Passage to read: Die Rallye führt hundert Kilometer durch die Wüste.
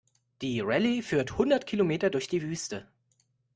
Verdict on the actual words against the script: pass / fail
pass